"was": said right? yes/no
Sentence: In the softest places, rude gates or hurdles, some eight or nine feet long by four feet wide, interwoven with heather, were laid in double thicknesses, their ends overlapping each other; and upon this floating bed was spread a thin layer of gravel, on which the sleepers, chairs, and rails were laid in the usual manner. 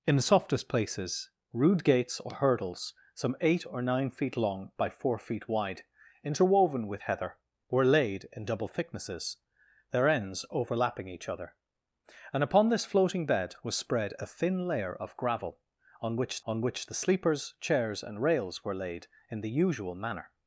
yes